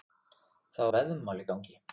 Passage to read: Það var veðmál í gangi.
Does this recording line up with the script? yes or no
no